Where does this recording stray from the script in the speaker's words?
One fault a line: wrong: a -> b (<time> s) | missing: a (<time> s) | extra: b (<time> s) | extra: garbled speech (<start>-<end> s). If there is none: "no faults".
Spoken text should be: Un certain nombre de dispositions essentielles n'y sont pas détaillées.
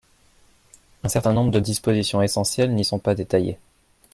no faults